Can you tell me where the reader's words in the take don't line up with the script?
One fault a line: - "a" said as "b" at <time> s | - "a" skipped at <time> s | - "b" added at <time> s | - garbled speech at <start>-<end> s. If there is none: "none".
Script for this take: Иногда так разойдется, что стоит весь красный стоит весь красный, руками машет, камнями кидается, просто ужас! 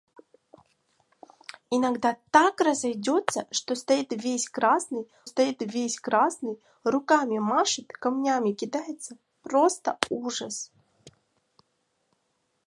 none